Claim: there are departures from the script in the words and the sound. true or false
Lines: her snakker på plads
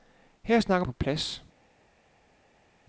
false